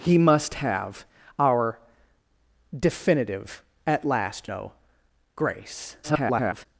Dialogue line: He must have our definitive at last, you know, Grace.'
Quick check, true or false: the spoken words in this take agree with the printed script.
false